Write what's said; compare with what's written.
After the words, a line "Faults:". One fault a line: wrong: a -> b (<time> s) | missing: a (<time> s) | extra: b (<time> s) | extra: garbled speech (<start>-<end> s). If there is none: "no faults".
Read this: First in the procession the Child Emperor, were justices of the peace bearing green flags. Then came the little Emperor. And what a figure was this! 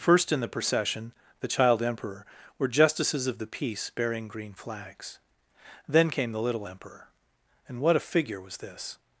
First in the procession the Child Emperor, were justices of the peace bearing green flags. Then came the little Emperor. And what a figure was this!
Faults:
no faults